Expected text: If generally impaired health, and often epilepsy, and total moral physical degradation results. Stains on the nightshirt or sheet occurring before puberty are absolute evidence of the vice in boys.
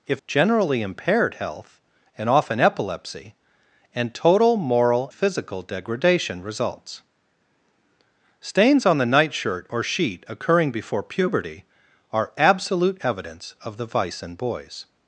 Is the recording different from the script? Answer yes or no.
no